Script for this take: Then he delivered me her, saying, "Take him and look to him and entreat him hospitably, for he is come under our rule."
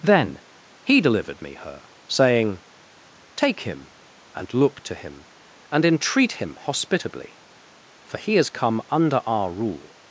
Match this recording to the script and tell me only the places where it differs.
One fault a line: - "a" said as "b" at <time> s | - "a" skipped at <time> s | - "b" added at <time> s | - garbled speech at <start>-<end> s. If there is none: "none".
none